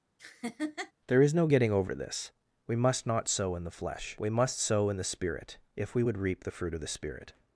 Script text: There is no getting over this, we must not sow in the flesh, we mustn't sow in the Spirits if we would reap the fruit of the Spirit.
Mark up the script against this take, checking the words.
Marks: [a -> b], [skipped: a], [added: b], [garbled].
There is no getting over this, we must not sow in the flesh, we [mustn't -> must] sow in the [Spirits -> Spirit] if we would reap the fruit of the Spirit.